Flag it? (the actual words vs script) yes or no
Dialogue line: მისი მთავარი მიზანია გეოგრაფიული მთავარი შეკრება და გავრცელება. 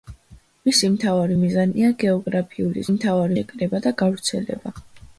no